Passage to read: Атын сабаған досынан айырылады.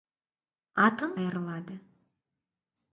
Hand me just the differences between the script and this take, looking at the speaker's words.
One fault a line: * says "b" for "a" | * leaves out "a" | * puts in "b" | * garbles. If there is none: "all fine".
* leaves out "сабаған досынан"